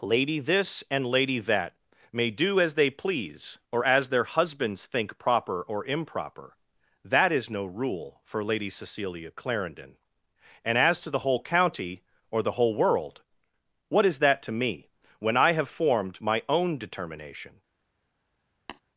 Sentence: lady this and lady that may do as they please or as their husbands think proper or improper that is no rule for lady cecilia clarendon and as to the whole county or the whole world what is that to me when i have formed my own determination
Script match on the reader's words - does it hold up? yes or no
yes